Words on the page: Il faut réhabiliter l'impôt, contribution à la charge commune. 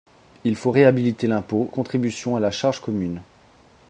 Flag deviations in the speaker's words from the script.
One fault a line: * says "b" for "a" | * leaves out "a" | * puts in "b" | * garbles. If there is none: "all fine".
all fine